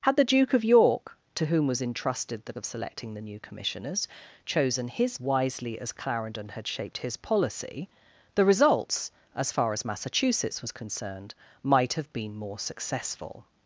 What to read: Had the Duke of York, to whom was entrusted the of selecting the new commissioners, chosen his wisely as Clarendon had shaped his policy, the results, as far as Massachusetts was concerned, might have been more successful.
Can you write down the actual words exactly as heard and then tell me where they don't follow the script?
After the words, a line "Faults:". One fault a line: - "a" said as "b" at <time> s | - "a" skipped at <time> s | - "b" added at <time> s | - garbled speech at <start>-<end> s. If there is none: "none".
Had the Duke of York, to whom was entrusted the of selecting the new commissioners, chosen his wisely as Clarendon had shaped his policy, the results, as far as Massachusetts was concerned, might have been more successful.
Faults:
none